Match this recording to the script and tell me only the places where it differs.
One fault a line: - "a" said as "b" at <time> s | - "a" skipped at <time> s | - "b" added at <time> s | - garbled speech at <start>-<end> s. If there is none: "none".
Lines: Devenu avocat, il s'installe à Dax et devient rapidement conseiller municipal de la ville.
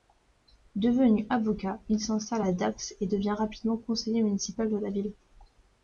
none